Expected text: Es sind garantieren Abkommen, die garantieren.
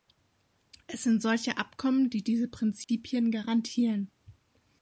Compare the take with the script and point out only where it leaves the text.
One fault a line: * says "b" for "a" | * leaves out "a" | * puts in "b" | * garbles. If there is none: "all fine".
* says "solche" for "garantieren"
* puts in "diese Prinzipien"